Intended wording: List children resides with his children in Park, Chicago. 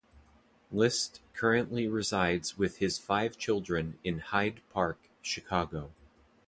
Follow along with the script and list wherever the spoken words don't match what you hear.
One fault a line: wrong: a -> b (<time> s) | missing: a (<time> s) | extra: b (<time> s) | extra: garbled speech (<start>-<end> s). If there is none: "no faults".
wrong: children -> currently (1.3 s)
extra: five (3.0 s)
extra: Hyde (4.2 s)